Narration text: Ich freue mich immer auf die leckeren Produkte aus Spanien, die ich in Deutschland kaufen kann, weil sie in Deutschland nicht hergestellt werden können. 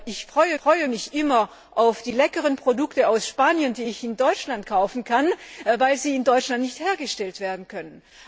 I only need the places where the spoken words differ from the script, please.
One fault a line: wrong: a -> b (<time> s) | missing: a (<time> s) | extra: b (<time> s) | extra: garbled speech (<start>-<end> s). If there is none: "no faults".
extra: freue (0.5 s)